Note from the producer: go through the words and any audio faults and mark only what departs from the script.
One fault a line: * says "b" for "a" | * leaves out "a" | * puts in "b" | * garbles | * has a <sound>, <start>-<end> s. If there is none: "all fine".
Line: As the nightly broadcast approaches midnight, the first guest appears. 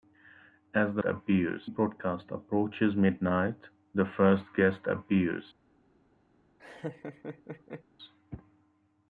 * says "appears" for "nightly"
* has a laugh, 6.6-7.8 s